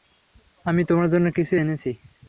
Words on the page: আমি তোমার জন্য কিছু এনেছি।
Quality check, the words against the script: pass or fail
pass